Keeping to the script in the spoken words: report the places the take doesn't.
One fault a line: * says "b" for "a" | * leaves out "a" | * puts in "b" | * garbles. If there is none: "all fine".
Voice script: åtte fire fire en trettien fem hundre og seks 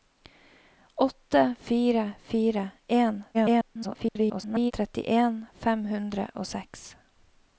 * garbles